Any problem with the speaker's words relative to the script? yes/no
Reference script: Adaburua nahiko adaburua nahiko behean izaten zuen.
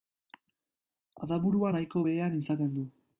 yes